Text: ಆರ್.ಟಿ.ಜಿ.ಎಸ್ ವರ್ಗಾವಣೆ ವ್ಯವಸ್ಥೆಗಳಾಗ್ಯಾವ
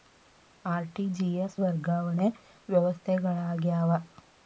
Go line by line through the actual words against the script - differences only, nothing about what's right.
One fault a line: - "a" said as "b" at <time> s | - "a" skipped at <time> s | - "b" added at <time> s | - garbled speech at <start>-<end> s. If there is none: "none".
none